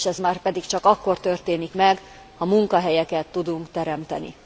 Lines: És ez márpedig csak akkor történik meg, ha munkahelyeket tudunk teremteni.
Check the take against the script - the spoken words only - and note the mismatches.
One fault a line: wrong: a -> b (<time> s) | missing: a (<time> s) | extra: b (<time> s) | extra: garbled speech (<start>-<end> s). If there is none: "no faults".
no faults